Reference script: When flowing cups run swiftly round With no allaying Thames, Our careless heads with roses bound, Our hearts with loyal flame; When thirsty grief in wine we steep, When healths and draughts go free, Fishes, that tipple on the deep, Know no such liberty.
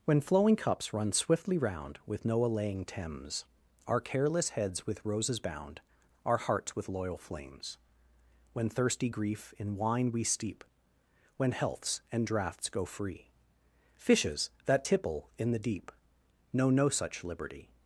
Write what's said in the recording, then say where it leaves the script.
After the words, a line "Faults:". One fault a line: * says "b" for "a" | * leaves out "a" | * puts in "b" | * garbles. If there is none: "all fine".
When flowing cups run swiftly round With no allaying Thames, Our careless heads with roses bound, Our hearts with loyal flames; When thirsty grief in wine we steep, When healths and draughts go free, Fishes, that tipple in the deep, Know no such liberty.
Faults:
* says "flames" for "flame"
* says "in" for "on"